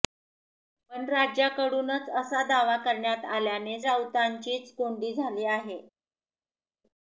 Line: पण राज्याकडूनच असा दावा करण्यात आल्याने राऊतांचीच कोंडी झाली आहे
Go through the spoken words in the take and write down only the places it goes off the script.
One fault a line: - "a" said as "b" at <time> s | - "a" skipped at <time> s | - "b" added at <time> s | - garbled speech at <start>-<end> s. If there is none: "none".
none